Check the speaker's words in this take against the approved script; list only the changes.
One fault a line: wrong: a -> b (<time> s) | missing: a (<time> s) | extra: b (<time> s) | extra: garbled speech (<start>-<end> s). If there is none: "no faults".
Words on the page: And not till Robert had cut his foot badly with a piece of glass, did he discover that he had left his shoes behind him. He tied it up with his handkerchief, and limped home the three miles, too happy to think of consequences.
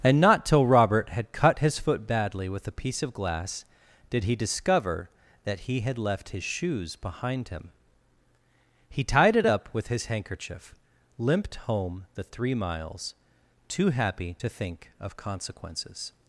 missing: and (10.7 s)